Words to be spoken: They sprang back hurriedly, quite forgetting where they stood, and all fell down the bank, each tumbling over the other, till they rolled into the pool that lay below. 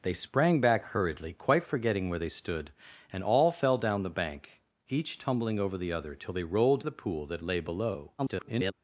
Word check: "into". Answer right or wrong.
wrong